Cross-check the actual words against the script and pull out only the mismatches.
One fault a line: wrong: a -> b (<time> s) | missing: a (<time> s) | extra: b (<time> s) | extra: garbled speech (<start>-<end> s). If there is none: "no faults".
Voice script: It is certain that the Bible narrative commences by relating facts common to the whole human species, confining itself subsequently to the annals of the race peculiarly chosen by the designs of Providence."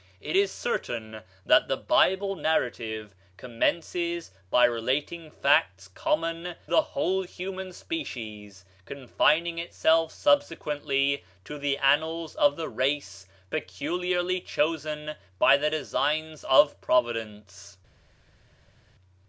missing: to (6.5 s)